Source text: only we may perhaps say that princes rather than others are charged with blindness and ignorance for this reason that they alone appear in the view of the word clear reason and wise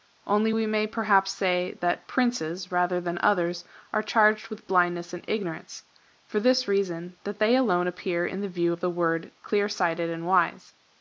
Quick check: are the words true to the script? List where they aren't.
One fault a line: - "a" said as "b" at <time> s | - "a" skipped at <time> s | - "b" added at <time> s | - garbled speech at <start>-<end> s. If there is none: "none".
- "reason" said as "sighted" at 9.7 s